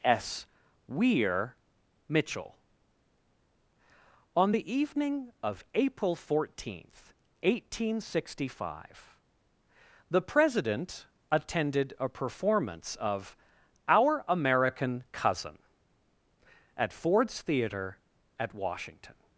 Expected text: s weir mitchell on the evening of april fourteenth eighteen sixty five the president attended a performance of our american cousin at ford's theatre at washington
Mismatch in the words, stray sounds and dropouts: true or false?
false